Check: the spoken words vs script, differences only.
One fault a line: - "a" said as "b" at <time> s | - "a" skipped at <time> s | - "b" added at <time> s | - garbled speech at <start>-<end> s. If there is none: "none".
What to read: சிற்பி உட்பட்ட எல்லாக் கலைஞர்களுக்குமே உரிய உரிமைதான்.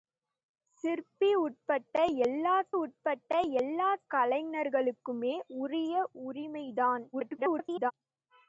- "உட்பட்ட எல்லாக்" added at 2.7 s
- garbled speech at 7.1-7.9 s